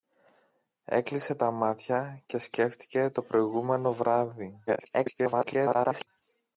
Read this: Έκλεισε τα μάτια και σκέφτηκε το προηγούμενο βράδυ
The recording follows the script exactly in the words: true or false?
false